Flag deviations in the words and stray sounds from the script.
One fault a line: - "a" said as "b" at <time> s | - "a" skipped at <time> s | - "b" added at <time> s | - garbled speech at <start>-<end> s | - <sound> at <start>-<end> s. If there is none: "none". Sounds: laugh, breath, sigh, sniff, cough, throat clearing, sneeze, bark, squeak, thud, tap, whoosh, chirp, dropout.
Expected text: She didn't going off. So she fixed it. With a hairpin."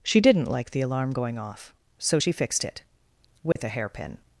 - "like the alarm" added at 0.5 s
- dropout at 3.5-3.6 s